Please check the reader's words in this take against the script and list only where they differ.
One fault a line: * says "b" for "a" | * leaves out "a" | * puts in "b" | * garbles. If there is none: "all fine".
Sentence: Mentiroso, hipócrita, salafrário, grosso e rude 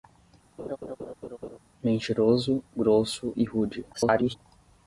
* leaves out "hipócrita salafrário"
* garbles